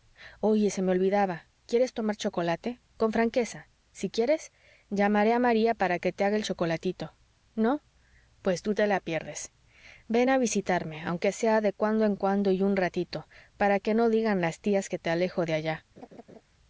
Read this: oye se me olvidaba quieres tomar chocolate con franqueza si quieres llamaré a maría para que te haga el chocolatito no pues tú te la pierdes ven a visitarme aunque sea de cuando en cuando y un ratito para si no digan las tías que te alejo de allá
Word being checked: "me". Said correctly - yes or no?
yes